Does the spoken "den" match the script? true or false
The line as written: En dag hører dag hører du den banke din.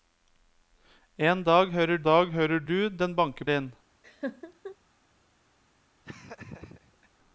true